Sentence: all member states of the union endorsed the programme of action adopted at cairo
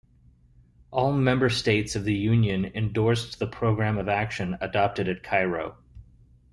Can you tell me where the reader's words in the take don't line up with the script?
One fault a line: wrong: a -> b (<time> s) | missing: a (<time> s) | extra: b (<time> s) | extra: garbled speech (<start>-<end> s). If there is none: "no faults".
no faults